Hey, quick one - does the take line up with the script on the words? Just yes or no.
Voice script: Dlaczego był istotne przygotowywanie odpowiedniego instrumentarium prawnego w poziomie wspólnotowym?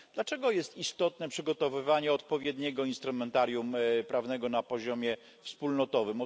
no